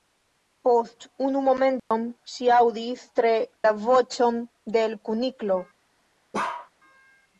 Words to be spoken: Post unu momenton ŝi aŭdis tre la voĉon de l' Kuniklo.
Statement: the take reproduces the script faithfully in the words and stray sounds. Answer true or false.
false